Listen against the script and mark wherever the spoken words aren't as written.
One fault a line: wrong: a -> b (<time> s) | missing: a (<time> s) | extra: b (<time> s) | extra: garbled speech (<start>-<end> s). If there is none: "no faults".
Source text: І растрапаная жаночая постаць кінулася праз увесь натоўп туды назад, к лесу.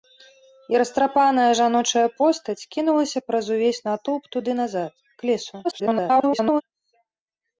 extra: garbled speech (5.6-6.6 s)